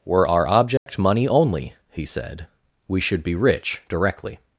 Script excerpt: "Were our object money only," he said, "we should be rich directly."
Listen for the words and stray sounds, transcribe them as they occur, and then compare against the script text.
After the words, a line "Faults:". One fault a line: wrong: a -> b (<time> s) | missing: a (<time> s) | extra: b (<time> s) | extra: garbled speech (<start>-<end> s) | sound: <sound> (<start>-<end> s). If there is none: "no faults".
"Were our object money only," he said, "we should be rich directly."
Faults:
sound: dropout (0.8-0.9 s)